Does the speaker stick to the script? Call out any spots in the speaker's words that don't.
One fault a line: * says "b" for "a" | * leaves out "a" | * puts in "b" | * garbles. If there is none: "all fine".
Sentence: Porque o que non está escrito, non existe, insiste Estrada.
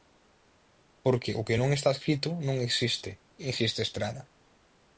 all fine